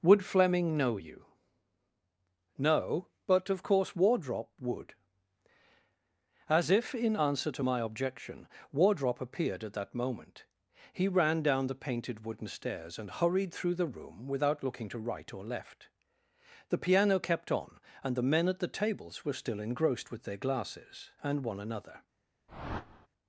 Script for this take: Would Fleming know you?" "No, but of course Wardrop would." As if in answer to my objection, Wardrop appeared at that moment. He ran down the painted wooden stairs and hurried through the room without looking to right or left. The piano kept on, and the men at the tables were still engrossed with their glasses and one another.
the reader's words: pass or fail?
pass